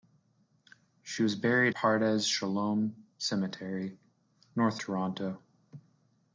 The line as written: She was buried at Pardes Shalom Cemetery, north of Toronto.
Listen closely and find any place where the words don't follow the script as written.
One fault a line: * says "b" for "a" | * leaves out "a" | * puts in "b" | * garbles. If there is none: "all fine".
* leaves out "at"
* leaves out "of"